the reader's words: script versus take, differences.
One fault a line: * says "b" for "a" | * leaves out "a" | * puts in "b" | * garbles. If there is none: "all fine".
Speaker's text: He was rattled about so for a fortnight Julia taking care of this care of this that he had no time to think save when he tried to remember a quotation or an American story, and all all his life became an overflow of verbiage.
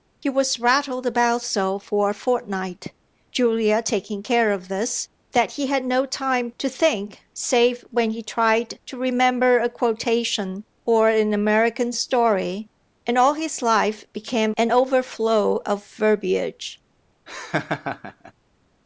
* leaves out "care of this"
* leaves out "all"